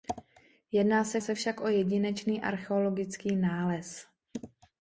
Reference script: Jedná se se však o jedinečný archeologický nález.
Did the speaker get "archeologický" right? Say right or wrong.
right